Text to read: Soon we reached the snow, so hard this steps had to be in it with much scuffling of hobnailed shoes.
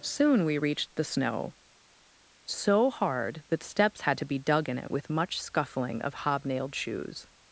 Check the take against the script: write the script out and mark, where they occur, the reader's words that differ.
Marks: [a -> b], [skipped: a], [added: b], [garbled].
Soon we reached the snow, so hard [this -> that] steps had to be [added: dug] in it with much scuffling of hobnailed shoes.